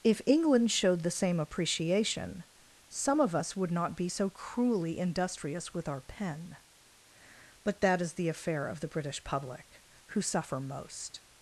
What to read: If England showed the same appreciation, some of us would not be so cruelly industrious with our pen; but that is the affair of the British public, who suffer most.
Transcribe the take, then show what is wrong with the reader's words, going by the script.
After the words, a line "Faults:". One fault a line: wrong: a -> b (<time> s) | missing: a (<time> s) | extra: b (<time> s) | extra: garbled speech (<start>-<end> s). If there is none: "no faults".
If England showed the same appreciation, some of us would not be so cruelly industrious with our pen; but that is the affair of the British public, who suffer most.
Faults:
no faults